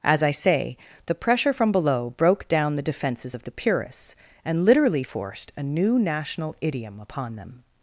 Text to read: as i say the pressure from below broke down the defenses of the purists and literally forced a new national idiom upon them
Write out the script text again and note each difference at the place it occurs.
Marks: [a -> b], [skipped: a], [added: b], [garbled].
as i say the pressure from below broke down the defenses of the purists and literally forced a new national idiom upon them